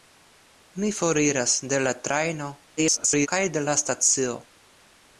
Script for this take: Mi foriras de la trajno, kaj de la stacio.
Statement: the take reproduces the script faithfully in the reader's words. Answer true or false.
false